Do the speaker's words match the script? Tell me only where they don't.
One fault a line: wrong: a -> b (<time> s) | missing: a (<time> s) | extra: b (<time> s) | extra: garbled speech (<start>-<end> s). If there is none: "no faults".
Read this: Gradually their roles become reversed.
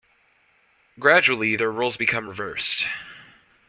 no faults